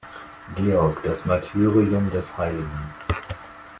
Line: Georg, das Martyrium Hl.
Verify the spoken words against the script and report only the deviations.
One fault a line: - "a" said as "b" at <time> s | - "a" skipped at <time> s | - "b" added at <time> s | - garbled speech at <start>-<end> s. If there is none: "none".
- "des" added at 2.1 s